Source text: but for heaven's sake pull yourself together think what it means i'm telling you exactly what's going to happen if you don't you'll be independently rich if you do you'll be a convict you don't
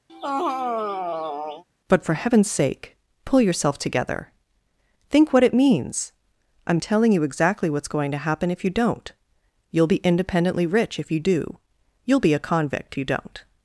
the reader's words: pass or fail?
pass